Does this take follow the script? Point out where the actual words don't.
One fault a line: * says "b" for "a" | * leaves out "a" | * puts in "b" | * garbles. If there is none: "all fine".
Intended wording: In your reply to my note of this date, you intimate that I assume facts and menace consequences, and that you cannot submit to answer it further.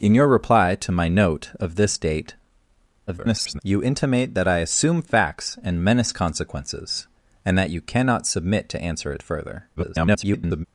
* garbles
* garbles